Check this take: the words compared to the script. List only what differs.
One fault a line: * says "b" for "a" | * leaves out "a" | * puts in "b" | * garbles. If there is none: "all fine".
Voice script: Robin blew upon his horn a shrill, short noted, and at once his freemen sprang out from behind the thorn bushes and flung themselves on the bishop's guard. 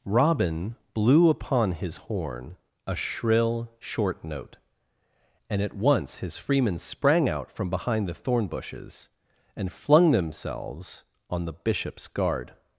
* says "note" for "noted"